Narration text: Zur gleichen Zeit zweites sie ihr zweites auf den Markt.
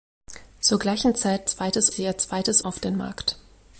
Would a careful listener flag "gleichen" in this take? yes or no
no